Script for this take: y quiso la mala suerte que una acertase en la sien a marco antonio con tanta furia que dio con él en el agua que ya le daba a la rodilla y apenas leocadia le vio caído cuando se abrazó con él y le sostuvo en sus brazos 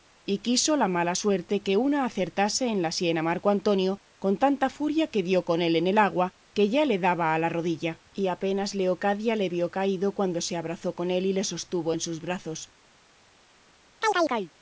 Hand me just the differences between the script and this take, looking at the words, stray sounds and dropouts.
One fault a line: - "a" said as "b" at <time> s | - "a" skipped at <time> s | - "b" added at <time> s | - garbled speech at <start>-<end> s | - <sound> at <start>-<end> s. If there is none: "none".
- chirp at 14.0-14.5 s